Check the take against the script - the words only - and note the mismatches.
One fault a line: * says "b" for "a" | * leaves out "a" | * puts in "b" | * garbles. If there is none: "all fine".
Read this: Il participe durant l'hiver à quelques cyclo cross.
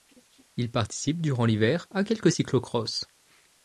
all fine